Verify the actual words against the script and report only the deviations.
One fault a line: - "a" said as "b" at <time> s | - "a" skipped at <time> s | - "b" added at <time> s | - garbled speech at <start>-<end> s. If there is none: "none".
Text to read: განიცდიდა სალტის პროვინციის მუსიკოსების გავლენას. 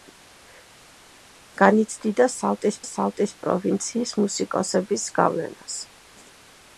- "სალტის" added at 2.9 s